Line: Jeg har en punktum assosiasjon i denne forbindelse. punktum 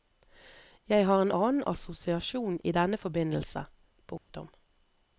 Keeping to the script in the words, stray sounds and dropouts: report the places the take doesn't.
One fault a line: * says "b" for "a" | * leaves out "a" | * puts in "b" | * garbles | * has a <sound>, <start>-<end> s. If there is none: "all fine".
* says "annen" for "punktum"
* has a dropout, 4.2-4.3 s